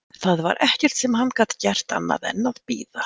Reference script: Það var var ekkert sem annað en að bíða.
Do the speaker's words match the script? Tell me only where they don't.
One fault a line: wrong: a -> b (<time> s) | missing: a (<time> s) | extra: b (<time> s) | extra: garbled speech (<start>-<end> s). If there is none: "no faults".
missing: var (0.6 s)
extra: hann gat gert (1.2 s)